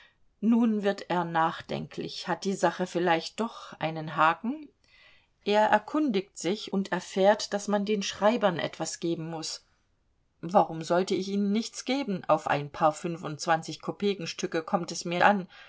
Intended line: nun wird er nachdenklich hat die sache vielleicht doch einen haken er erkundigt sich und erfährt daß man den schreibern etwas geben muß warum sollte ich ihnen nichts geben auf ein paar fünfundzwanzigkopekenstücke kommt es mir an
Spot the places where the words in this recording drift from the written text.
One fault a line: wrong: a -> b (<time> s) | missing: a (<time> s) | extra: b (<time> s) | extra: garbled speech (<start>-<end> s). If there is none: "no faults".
no faults